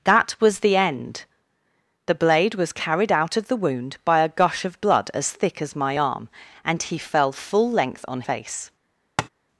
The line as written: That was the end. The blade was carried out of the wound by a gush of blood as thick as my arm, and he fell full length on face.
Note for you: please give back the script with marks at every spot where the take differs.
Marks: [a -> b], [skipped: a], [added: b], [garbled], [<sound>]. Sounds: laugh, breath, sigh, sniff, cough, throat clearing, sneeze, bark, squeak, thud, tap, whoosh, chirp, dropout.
That was the end. The blade was carried out of the wound by a gush of blood as thick as my arm, and he fell full length on face. [tap]